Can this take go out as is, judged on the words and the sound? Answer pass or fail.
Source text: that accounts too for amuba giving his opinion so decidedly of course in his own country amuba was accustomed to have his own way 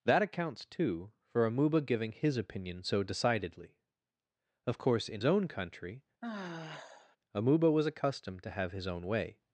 fail